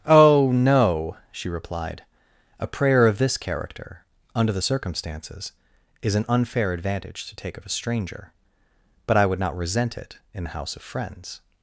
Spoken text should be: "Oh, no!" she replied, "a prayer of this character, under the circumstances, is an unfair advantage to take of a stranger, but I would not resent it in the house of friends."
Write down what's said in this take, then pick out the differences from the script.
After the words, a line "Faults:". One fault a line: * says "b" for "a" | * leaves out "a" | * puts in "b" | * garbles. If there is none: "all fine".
"Oh, no!" she replied, "a prayer of this character, under the circumstances, is an unfair advantage to take of a stranger, but I would not resent it in the house of friends."
Faults:
all fine